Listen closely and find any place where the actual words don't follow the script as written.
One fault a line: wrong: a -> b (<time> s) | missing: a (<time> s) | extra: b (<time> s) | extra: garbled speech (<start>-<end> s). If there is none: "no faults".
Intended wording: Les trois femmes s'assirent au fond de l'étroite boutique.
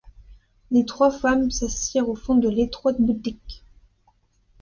no faults